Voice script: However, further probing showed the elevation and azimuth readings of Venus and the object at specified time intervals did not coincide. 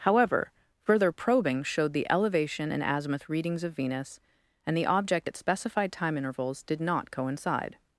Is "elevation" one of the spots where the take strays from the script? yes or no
no